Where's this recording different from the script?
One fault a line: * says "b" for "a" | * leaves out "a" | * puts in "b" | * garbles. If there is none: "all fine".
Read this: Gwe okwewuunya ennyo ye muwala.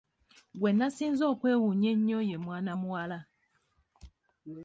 * puts in "nasinze"
* puts in "mwana"